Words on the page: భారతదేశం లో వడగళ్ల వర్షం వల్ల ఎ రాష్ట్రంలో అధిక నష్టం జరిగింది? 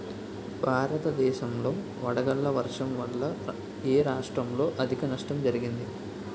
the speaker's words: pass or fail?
pass